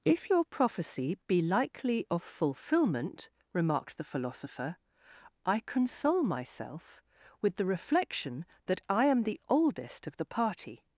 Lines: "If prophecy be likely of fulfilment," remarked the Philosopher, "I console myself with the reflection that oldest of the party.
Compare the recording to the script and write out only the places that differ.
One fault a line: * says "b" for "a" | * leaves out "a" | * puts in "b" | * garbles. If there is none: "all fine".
* puts in "your"
* puts in "I am the"